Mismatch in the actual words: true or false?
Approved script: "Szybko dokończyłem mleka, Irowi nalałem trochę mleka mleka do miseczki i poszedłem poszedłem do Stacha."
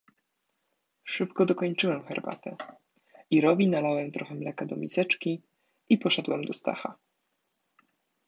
true